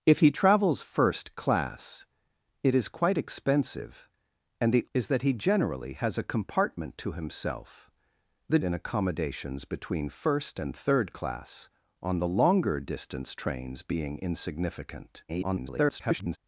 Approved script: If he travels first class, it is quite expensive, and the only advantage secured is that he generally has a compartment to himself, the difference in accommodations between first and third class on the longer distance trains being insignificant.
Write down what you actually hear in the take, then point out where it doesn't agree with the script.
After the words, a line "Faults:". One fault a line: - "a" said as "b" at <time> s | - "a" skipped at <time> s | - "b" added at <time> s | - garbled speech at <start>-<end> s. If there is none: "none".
If he travels first class, it is quite expensive, and the is that he generally has a compartment to himself, the in accommodations between first and third class on the longer distance trains being insignificant. [garbled]
Faults:
- "only advantage secured" skipped at 4.9 s
- "difference" skipped at 8.6 s
- garbled speech at 15.3-16.4 s